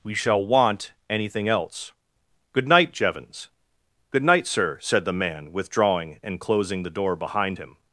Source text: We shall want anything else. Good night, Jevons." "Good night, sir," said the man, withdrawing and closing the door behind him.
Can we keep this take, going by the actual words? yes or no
yes